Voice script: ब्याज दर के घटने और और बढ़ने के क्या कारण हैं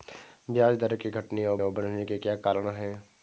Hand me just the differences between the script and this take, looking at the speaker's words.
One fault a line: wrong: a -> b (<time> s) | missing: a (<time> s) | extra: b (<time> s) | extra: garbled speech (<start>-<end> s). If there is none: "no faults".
no faults